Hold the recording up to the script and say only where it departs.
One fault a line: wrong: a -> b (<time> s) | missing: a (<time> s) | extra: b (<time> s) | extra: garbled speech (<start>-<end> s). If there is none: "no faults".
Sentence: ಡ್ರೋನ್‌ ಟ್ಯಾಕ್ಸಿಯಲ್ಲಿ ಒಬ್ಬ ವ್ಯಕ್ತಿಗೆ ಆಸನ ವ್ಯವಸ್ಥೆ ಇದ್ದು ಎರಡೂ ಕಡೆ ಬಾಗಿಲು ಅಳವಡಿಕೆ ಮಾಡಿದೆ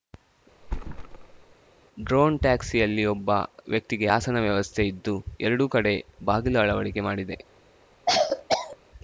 no faults